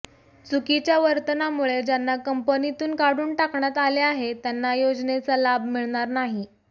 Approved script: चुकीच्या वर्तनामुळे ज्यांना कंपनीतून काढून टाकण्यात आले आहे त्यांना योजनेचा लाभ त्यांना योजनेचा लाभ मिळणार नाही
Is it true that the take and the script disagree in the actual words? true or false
true